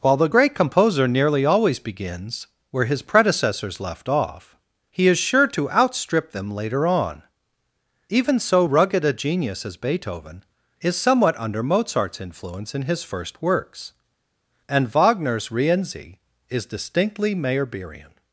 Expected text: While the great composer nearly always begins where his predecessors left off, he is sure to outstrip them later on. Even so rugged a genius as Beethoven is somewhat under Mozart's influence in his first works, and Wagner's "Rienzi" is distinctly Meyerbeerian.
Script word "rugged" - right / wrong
right